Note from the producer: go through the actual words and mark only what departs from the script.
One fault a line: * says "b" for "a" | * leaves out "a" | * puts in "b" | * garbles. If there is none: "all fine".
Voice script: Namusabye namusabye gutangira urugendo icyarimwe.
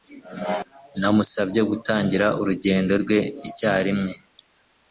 * leaves out "namusabye"
* puts in "rwe"